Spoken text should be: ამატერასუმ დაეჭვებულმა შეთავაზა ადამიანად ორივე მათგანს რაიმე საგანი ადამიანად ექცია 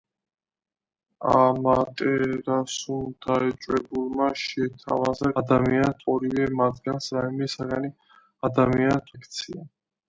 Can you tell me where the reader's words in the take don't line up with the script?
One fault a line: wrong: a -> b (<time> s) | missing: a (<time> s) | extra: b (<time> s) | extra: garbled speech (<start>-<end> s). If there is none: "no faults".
no faults